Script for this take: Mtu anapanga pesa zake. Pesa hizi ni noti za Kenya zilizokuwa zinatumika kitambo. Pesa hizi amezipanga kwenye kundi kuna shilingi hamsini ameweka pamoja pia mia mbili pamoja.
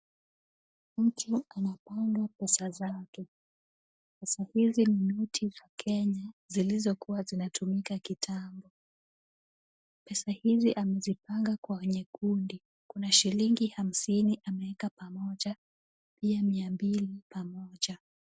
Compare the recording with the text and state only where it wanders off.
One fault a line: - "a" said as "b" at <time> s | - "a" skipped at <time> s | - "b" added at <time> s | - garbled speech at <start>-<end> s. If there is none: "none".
none